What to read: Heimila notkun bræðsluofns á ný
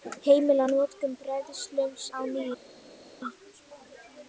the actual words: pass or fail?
pass